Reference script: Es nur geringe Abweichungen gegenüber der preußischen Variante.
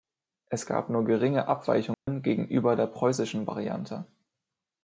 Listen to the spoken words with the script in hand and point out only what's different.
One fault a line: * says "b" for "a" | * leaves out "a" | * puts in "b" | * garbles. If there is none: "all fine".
* puts in "gab"